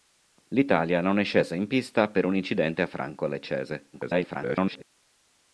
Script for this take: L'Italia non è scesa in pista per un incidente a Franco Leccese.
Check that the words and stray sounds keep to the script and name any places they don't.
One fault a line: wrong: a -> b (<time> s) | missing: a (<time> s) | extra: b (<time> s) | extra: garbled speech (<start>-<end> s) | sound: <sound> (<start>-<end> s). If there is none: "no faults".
extra: garbled speech (3.9-4.8 s)